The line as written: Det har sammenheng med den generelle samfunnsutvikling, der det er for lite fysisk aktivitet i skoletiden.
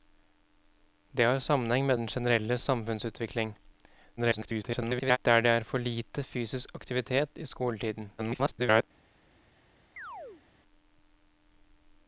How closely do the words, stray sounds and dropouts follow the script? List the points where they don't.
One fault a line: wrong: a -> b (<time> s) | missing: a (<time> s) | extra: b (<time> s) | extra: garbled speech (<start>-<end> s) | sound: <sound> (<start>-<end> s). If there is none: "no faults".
extra: garbled speech (4.2-5.2 s)
extra: garbled speech (8.2-8.8 s)
sound: chirp (10.0-10.4 s)